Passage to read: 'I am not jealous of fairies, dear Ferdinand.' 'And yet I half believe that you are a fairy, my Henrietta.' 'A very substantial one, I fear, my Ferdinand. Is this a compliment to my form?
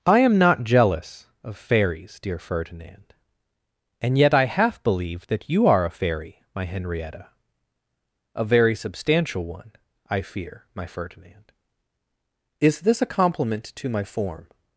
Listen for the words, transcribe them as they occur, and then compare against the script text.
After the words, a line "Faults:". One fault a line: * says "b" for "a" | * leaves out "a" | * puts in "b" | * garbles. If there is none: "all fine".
'I am not jealous of fairies, dear Ferdinand.' 'And yet I half believe that you are a fairy, my Henrietta.' 'A very substantial one, I fear, my Ferdinand. Is this a compliment to my form?
Faults:
all fine